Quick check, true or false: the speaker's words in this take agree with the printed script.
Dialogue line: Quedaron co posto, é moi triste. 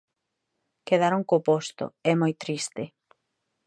true